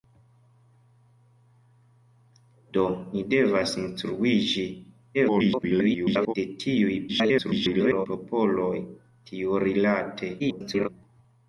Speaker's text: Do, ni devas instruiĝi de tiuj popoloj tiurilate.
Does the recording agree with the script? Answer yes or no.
no